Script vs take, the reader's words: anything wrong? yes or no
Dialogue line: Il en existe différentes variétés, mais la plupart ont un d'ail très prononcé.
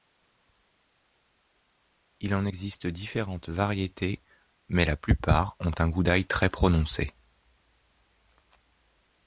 yes